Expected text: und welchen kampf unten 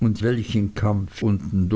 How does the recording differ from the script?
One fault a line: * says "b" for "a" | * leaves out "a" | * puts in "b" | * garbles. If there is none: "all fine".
all fine